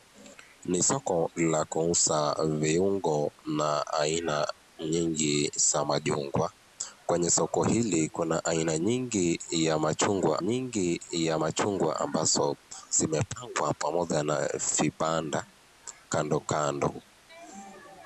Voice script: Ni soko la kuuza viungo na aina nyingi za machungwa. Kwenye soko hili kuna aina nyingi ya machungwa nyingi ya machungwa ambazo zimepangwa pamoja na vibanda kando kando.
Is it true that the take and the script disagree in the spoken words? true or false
false